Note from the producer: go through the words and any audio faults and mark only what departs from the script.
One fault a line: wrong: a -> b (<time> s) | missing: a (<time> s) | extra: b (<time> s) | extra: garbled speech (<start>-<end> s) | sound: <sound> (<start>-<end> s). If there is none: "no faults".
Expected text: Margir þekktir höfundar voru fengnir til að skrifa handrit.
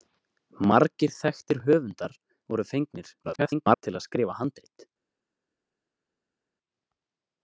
extra: garbled speech (3.2-3.8 s)